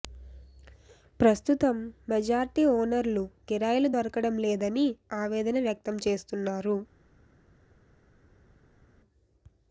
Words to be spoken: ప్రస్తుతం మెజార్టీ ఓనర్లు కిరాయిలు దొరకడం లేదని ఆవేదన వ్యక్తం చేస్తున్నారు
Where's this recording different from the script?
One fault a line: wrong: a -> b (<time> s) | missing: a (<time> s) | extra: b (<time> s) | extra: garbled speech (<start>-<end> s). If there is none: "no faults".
no faults